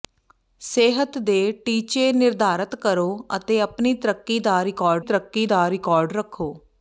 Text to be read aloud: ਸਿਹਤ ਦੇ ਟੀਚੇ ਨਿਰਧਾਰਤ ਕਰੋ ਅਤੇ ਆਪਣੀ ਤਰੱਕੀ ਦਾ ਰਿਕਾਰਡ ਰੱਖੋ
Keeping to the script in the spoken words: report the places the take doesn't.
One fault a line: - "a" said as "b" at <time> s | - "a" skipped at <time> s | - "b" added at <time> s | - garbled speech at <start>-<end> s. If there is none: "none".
- "ਤਰੱਕੀ ਦਾ ਰਿਕਾਰਡ" added at 5.0 s